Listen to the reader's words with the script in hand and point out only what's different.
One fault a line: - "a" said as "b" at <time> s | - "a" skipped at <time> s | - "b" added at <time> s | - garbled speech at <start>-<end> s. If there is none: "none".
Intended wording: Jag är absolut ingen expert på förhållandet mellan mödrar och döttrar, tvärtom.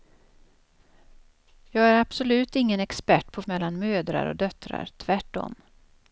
- "förhållandet" skipped at 3.4 s